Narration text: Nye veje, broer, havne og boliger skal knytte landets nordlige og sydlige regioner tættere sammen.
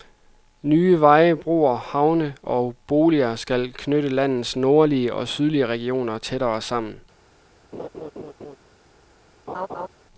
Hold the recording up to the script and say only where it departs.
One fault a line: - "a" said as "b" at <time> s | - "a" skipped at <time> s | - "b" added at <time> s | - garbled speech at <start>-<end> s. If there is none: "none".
none